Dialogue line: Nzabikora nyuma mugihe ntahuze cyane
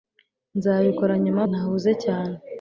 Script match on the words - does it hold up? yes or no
no